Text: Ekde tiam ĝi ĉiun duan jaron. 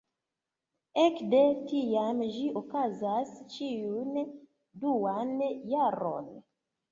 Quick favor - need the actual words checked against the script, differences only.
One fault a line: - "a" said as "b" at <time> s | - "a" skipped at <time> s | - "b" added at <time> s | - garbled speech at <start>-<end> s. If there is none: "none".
- "okazas" added at 2.6 s